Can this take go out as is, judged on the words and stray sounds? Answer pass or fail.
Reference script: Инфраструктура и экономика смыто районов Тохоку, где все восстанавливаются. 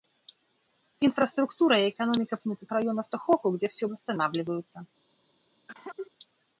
fail